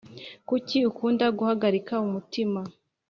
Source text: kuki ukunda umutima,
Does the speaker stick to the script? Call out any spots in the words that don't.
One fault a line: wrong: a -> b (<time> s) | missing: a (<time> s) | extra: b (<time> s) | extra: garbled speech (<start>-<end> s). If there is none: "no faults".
extra: guhagarika (1.4 s)